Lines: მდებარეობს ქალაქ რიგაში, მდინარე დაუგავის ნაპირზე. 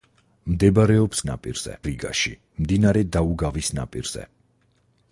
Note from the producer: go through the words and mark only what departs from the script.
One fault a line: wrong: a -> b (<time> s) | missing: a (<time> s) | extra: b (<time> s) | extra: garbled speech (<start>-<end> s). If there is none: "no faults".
wrong: ქალაქ -> ნაპირზე (1.3 s)